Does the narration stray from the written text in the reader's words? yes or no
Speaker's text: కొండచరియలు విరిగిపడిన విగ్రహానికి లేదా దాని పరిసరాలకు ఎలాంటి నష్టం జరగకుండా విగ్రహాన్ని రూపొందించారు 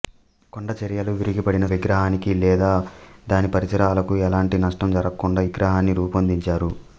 no